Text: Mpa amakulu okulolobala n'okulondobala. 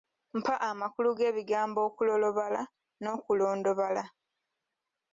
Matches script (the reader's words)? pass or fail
fail